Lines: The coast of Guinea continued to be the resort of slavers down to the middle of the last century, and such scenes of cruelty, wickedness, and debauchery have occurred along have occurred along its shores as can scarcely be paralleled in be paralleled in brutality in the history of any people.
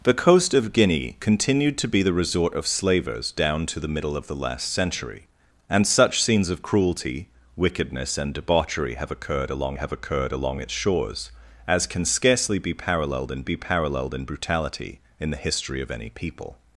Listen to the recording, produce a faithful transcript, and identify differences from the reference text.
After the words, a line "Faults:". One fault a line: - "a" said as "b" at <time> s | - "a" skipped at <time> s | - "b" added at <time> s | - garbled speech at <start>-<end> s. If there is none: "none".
The coast of Guinea continued to be the resort of slavers down to the middle of the last century, and such scenes of cruelty, wickedness, and debauchery have occurred along have occurred along its shores as can scarcely be paralleled in be paralleled in brutality in the history of any people.
Faults:
none